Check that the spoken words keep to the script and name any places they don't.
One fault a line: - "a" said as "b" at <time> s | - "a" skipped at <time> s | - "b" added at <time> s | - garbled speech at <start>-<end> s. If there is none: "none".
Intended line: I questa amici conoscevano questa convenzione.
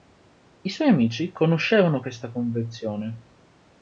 - "questa" said as "suoi" at 0.7 s